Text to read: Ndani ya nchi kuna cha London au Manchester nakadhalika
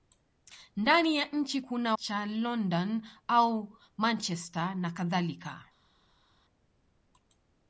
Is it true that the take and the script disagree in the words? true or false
false